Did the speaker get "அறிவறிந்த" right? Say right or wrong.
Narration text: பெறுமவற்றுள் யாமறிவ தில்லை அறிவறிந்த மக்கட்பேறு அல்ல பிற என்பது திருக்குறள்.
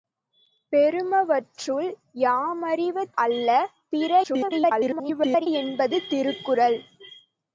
wrong